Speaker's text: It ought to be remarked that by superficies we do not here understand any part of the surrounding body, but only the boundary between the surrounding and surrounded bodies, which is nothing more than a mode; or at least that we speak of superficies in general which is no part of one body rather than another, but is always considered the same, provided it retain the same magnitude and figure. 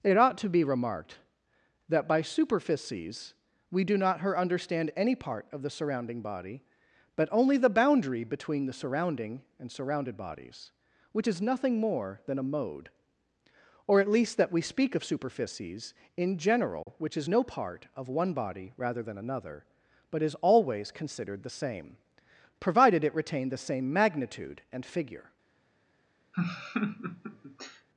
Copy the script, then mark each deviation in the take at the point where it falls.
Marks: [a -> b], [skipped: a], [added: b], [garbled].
It ought to be remarked that by superficies we do not [here -> her] understand any part of the surrounding body, but only the boundary between the surrounding and surrounded bodies, which is nothing more than a mode; or at least that we speak of superficies in general which is no part of one body rather than another, but is always considered the same, provided it retain the same magnitude and figure.